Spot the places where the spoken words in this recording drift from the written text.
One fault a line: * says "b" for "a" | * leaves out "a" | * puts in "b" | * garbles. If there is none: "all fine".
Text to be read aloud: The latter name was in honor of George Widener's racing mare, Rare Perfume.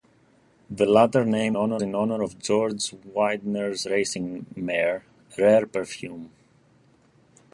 * says "honor" for "was"